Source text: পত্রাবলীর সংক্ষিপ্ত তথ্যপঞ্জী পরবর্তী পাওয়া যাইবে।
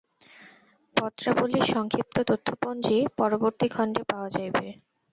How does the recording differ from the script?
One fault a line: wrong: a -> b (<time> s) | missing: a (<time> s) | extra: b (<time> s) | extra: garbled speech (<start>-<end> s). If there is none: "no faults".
extra: খণ্ডে (3.7 s)